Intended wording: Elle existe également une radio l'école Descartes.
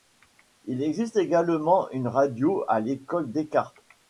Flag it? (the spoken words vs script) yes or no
yes